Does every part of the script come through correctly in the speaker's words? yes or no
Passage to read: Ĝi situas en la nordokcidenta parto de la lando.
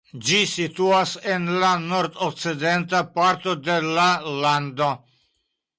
yes